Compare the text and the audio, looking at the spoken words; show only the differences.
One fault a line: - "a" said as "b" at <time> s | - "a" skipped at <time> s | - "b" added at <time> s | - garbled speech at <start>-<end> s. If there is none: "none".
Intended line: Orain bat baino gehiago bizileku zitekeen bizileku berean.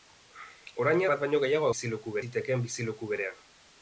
none